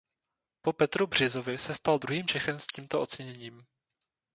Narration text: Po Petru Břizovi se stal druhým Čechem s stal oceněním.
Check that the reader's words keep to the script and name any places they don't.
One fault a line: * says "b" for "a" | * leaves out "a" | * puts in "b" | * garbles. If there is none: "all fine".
* says "tímto" for "stal"